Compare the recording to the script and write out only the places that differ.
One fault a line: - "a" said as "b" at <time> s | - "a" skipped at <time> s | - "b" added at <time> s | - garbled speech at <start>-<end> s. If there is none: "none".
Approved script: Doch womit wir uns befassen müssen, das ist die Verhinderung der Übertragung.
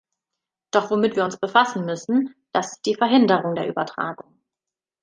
none